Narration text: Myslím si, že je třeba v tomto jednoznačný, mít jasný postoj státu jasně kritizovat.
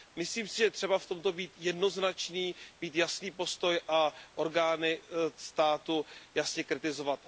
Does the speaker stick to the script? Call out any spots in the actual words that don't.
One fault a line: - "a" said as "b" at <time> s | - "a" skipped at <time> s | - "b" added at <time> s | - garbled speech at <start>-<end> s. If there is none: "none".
- "být" added at 1.3 s
- "a orgány" added at 3.9 s